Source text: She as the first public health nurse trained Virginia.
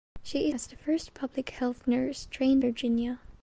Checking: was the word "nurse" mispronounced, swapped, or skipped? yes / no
no